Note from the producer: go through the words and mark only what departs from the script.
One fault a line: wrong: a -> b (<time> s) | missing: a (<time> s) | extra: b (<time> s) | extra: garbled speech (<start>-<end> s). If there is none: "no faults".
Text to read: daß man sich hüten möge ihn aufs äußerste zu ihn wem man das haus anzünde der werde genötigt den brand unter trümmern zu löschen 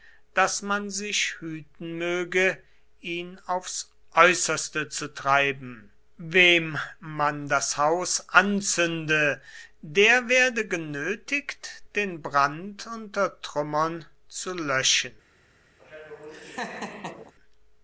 wrong: ihn -> treiben (5.1 s)